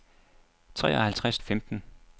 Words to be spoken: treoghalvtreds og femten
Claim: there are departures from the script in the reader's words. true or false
false